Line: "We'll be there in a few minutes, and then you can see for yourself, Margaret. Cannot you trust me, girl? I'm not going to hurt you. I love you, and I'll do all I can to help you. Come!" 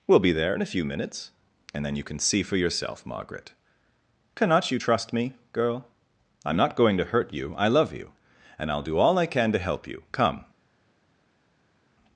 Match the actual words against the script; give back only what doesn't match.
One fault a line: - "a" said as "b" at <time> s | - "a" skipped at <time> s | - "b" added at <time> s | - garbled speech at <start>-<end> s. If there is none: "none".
none